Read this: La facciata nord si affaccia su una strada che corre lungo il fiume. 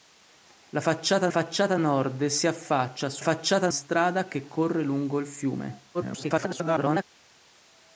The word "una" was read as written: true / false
false